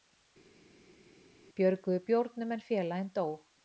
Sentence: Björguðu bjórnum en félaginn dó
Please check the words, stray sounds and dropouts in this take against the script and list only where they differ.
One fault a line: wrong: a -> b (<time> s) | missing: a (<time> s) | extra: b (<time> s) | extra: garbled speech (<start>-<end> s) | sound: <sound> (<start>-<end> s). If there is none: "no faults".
no faults